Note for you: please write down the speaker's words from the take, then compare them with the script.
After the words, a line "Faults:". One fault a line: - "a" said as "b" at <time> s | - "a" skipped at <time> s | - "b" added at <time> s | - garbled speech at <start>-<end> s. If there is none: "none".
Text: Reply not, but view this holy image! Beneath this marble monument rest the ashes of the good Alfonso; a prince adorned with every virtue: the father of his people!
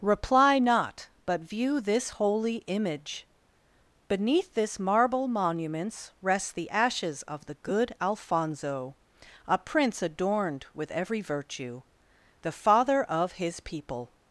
Reply not, but view this holy image! Beneath this marble monuments rest the ashes of the good Alfonso; a prince adorned with every virtue: the father of his people!
Faults:
- "monument" said as "monuments" at 5.3 s